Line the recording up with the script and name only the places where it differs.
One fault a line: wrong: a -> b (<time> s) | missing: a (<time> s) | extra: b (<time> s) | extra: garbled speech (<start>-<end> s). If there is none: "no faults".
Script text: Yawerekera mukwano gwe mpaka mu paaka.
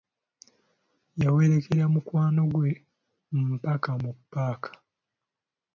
no faults